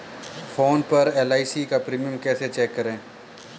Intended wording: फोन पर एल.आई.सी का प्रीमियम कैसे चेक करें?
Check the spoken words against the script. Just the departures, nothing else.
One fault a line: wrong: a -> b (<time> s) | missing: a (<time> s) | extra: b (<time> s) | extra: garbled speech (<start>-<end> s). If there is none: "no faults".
no faults